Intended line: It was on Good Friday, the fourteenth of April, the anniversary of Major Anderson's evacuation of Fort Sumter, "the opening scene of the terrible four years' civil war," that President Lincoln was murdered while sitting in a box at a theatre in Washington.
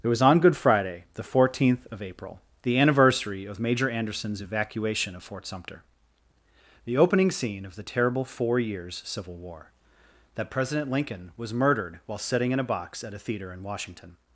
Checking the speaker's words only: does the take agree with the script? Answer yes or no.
yes